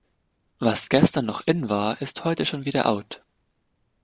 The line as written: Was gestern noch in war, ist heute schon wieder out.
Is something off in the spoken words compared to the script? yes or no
no